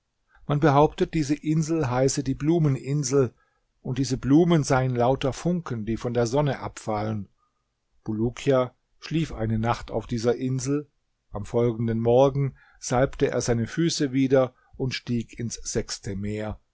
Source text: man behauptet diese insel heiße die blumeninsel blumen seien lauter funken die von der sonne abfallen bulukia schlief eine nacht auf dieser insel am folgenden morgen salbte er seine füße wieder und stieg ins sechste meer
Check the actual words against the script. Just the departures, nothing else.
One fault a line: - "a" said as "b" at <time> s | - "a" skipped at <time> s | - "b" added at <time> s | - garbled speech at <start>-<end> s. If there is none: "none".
- "und diese" added at 3.8 s